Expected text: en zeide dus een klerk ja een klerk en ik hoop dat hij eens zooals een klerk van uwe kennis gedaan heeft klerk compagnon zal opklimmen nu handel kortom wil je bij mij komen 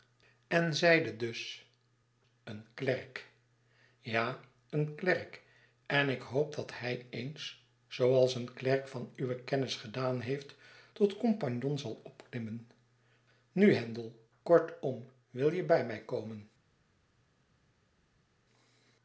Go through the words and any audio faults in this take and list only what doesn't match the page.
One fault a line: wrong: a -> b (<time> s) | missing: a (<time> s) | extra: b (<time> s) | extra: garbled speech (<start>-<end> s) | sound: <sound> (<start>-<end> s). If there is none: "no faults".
wrong: klerk -> tot (10.9 s)